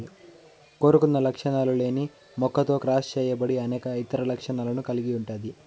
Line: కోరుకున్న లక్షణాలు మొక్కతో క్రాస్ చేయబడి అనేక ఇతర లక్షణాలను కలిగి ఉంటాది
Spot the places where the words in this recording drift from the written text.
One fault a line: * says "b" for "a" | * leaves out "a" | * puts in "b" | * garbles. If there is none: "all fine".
* puts in "లేని"